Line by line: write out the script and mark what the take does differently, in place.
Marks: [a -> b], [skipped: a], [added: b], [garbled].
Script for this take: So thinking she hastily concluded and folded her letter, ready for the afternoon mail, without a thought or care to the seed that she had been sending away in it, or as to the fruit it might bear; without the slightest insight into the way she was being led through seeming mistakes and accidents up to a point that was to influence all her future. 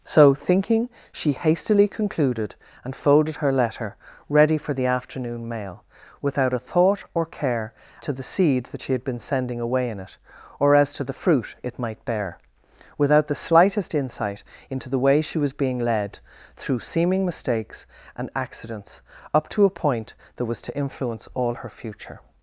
So thinking she hastily concluded and folded her letter, ready for the afternoon mail, without a thought or care to the seed that she had been sending away in it, or as to the fruit it might bear; without the slightest insight into the way she was being led through seeming mistakes and accidents up to a point that was to influence all her future.